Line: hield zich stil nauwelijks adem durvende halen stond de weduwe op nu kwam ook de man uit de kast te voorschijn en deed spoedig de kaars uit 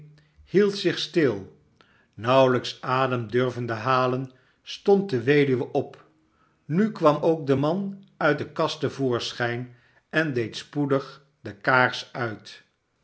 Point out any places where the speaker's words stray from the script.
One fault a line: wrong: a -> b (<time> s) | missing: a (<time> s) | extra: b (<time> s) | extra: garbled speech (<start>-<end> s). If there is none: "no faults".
no faults